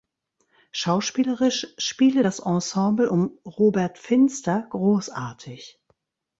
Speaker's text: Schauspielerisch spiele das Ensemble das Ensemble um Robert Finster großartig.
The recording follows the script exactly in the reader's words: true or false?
false